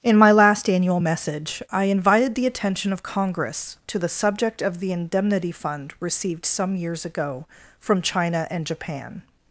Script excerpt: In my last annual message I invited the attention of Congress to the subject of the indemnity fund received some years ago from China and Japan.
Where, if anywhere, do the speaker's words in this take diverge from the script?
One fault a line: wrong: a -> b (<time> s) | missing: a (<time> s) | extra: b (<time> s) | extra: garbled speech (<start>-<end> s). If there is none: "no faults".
no faults